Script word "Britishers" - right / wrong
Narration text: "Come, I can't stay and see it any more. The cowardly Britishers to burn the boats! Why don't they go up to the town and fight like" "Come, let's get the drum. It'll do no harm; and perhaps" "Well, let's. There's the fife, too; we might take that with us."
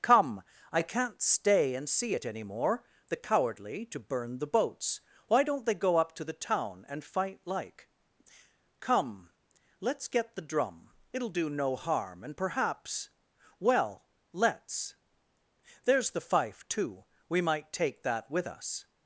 wrong